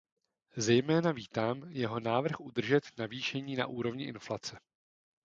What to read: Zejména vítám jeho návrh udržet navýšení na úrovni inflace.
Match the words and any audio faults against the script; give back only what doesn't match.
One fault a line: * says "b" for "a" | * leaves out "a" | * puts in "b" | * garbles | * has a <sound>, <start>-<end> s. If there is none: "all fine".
all fine